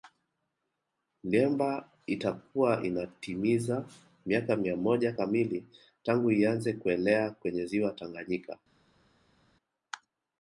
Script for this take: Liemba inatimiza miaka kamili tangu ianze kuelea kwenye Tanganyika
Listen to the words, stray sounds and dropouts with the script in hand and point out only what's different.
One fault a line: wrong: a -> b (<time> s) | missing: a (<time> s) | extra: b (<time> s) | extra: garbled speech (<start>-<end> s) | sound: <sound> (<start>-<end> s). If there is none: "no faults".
extra: itakuwa (2.1 s)
extra: mia moja (4.5 s)
extra: Ziwa (7.6 s)